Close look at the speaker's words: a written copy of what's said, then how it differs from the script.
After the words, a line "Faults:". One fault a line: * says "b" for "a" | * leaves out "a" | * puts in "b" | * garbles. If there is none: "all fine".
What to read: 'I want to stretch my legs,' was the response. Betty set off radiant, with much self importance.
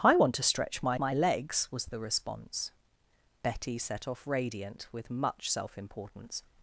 'I want to stretch my my legs,' was the response. Betty set off radiant, with much self importance.
Faults:
* puts in "my"